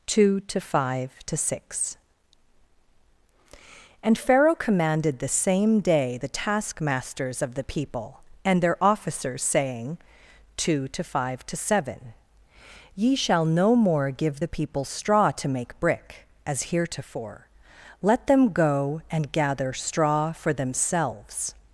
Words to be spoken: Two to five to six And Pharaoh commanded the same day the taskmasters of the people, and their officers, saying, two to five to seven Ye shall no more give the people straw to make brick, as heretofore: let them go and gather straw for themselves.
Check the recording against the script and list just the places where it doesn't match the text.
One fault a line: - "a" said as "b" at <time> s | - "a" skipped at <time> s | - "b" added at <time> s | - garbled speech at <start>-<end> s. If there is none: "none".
none